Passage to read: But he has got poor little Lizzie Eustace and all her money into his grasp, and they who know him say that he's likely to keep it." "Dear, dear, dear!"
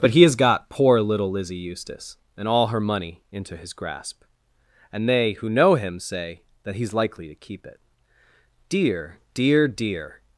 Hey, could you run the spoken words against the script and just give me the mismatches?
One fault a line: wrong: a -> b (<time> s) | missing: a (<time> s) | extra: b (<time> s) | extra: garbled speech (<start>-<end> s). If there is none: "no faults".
no faults